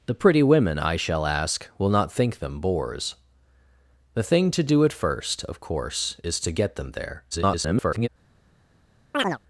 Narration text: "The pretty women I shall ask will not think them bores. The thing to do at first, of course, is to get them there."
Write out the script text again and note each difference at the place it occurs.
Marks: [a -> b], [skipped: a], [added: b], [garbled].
"The pretty women I shall ask will not think them bores. The thing to do at first, of course, is to get them there." [garbled]